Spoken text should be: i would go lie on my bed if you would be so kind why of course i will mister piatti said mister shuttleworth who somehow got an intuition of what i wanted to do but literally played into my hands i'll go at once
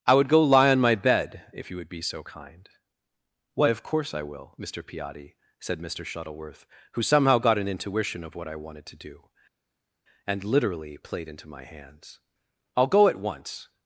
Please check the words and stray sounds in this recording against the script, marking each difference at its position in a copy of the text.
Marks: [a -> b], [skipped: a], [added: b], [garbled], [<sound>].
i would go lie on my bed if you would be so kind why of course i will mister piatti said mister shuttleworth who somehow got an intuition of what i wanted to do [but -> and] literally played into my hands i'll go at once